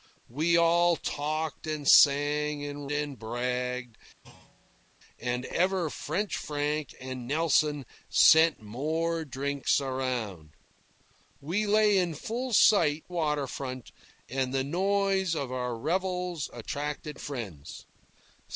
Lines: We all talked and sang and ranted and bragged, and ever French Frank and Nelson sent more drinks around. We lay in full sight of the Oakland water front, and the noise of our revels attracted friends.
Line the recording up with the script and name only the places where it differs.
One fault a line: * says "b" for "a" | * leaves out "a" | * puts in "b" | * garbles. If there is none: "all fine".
* leaves out "ranted"
* leaves out "of the Oakland"